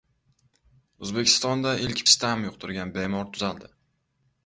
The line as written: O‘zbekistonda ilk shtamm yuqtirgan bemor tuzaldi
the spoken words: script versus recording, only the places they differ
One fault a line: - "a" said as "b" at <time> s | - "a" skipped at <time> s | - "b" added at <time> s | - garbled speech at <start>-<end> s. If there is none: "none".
none